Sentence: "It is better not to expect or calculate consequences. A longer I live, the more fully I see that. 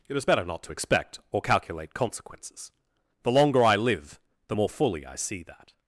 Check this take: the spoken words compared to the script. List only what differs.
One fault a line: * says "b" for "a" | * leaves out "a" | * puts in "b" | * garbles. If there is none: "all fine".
* says "The" for "A"